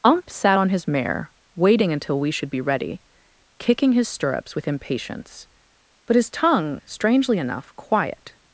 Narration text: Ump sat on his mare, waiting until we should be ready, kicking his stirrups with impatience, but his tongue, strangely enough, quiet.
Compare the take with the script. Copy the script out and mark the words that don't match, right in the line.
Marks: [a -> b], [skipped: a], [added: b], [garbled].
Ump sat on his mare, waiting until we should be ready, kicking his stirrups with impatience, but his tongue, strangely enough, quiet.